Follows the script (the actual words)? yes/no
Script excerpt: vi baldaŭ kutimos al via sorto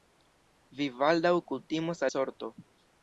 no